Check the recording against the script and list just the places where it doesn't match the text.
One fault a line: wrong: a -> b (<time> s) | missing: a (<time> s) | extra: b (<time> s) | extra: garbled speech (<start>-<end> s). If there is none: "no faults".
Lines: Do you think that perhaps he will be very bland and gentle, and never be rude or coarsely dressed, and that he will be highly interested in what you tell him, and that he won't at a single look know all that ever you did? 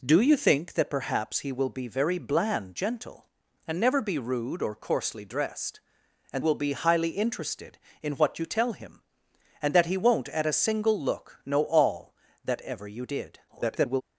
missing: and (2.8 s)
missing: that he (6.4 s)
extra: garbled speech (13.5-14.0 s)